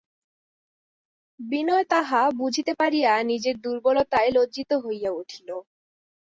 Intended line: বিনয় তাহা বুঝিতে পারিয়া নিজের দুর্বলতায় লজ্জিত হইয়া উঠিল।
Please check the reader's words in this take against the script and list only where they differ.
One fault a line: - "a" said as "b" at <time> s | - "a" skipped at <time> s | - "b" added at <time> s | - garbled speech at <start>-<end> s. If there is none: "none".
none